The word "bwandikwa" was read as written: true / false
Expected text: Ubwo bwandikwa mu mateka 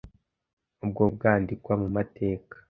true